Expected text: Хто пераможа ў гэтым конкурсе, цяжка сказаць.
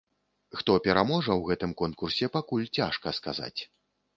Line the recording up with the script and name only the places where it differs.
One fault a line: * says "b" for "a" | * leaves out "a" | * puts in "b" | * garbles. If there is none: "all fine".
* puts in "пакуль"